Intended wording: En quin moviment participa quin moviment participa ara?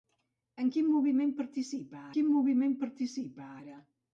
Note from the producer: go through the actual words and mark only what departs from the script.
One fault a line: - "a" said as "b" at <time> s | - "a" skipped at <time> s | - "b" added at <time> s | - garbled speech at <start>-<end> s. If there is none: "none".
none